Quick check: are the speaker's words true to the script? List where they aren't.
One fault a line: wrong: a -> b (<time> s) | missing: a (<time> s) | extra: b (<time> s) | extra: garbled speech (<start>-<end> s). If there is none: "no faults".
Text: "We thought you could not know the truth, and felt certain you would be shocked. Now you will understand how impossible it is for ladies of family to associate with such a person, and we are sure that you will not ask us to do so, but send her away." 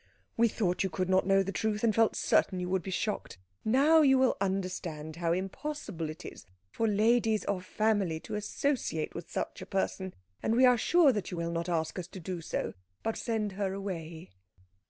no faults